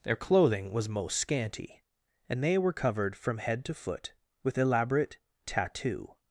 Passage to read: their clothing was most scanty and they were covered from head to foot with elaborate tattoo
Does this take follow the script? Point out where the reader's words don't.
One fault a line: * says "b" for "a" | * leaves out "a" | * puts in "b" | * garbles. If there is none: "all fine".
all fine